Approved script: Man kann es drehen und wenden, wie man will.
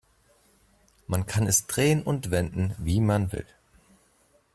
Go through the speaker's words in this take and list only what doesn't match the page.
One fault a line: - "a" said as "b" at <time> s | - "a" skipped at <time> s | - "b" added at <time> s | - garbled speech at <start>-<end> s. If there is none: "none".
none